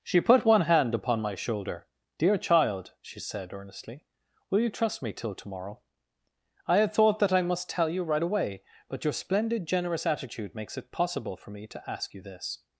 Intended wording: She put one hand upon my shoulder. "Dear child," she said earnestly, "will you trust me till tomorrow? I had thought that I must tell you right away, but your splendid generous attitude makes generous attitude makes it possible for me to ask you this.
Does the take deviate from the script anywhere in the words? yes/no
yes